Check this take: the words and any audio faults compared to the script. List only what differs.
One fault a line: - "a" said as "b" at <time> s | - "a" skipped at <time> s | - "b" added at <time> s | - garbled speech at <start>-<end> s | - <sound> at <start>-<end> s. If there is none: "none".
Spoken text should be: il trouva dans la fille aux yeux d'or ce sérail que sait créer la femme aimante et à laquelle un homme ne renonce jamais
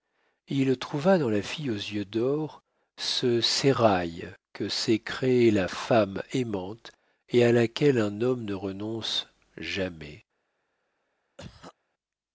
- cough at 11.4-11.7 s